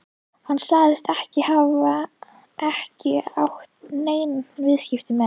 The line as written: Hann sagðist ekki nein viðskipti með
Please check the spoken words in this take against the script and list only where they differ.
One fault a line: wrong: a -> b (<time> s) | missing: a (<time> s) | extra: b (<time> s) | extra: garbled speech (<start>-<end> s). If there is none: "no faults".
extra: hafa ekki átt (1.5 s)